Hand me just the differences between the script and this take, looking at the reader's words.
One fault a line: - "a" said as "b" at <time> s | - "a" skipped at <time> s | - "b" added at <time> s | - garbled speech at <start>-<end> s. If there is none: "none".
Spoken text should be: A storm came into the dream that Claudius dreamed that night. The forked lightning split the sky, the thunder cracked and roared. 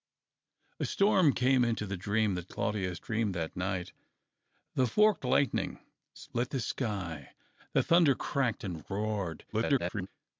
- garbled speech at 9.5-10.1 s